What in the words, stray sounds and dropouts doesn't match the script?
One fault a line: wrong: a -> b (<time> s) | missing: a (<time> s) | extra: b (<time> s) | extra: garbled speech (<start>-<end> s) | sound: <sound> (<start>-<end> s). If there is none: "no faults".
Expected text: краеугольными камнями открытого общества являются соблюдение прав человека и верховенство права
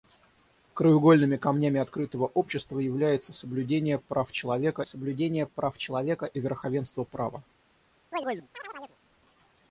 extra: соблюдение прав человека (4.8 s)
sound: chirp (8.1-9.0 s)